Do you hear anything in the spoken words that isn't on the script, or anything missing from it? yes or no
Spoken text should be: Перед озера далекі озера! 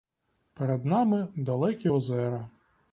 yes